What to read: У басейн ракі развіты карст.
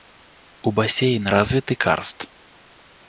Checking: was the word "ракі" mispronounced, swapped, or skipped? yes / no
yes